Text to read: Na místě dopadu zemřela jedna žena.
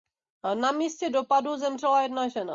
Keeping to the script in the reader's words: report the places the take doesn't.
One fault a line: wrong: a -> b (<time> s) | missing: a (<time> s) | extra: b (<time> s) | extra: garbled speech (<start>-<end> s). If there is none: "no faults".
no faults